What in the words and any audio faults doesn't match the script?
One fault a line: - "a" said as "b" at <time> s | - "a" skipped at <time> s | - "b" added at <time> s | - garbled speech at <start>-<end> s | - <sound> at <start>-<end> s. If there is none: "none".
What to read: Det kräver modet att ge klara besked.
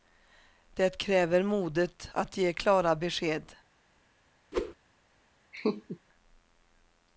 - whoosh at 4.5-4.7 s
- laugh at 5.5-6.0 s